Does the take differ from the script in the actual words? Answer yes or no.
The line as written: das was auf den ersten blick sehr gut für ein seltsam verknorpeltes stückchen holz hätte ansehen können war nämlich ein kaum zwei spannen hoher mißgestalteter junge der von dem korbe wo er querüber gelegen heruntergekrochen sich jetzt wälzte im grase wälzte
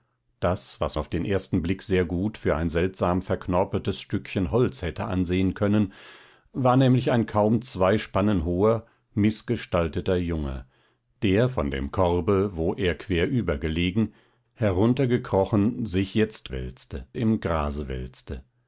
no